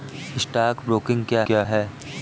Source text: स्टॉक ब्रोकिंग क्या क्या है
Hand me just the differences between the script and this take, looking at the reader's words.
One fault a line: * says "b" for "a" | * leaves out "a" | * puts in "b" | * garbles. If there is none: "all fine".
all fine